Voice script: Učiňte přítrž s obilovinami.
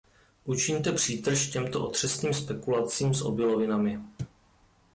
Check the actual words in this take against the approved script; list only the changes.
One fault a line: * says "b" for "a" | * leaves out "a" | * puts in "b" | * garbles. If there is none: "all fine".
* puts in "těmto otřesným spekulacím"